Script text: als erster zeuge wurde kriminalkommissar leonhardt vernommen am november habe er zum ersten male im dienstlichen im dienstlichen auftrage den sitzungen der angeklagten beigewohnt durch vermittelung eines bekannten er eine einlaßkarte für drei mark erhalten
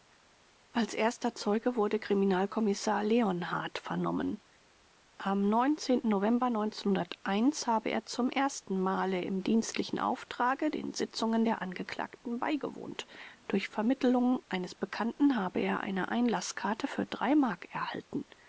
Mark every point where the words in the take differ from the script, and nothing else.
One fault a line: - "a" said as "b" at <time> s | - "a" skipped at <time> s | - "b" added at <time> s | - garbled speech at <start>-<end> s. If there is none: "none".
- "im dienstlichen" skipped at 10.0 s
- "habe" added at 15.4 s